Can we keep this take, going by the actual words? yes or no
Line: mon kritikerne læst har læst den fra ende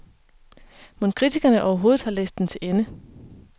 no